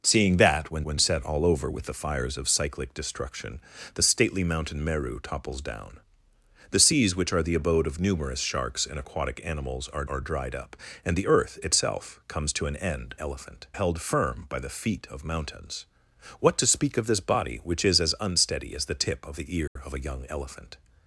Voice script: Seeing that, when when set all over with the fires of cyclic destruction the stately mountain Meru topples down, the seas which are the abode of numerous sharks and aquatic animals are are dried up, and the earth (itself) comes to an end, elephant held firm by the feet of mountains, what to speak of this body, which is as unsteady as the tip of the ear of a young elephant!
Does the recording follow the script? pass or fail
pass